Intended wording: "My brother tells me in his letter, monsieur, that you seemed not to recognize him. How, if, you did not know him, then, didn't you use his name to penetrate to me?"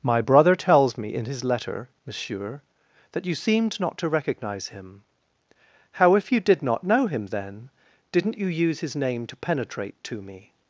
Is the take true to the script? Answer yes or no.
yes